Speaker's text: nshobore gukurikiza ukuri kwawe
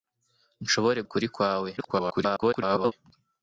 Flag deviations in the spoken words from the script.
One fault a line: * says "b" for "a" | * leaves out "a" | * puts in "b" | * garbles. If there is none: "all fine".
* leaves out "gukurikiza"
* garbles